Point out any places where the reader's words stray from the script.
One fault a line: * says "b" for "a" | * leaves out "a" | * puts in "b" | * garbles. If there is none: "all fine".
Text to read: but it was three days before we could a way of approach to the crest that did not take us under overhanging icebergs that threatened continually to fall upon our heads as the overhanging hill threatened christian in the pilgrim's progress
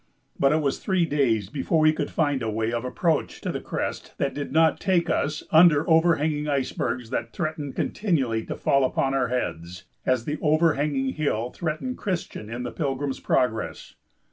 * puts in "find"